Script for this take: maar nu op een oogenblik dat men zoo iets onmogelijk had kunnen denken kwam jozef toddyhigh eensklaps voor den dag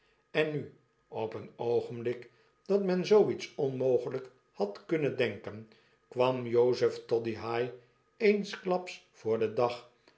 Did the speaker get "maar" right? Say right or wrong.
wrong